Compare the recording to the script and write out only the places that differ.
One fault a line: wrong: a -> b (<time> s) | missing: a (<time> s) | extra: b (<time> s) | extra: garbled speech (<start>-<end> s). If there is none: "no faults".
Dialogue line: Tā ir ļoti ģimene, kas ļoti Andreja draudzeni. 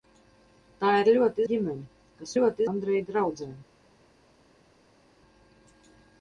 no faults